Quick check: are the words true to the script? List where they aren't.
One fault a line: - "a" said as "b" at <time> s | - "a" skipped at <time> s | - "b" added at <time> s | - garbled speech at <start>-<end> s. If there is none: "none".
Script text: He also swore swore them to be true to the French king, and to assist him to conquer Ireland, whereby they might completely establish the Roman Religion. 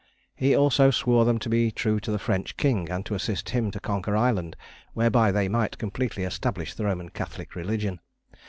- "swore" skipped at 1.2 s
- "Catholic" added at 7.1 s